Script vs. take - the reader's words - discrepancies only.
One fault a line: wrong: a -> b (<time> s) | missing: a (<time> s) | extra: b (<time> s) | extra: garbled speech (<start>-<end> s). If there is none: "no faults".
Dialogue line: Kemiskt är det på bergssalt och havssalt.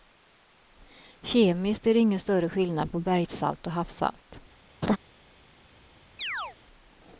extra: ingen större skillnad (2.0 s)